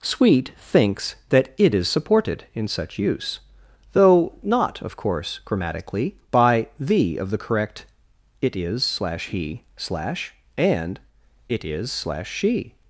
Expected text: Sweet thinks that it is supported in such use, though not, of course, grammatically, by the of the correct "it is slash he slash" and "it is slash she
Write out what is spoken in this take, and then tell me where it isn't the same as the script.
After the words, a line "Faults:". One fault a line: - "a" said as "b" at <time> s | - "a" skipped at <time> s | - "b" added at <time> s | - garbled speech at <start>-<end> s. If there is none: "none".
Sweet thinks that it is supported in such use, though not, of course, grammatically, by the of the correct "it is slash he slash" and "it is slash she
Faults:
none